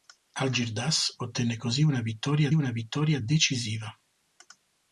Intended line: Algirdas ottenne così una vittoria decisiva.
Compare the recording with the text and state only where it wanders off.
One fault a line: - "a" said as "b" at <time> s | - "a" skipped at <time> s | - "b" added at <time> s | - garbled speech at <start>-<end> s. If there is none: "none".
- "una vittoria" added at 2.5 s